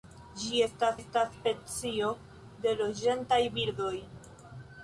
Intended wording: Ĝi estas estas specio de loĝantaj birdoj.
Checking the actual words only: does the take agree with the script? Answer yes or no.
yes